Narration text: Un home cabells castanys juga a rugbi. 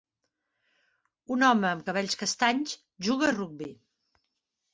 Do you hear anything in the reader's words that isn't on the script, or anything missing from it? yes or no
yes